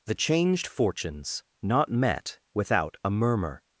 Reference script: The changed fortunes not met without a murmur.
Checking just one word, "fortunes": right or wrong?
right